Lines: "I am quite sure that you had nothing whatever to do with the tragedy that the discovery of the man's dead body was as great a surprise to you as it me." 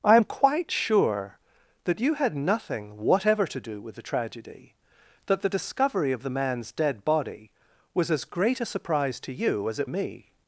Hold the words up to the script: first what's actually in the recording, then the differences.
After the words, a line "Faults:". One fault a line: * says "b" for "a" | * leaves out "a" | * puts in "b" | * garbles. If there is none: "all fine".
"I am quite sure that you had nothing whatever to do with the tragedy that the discovery of the man's dead body was as great a surprise to you as it me."
Faults:
all fine